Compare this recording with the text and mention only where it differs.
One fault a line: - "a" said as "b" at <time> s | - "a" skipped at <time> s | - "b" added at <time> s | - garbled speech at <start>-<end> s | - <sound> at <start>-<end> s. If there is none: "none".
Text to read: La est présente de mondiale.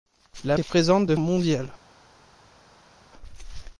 none